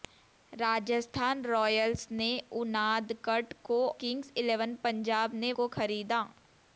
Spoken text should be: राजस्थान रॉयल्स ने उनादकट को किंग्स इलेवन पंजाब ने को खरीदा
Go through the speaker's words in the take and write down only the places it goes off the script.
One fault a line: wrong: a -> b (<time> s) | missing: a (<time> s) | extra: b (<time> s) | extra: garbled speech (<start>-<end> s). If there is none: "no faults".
no faults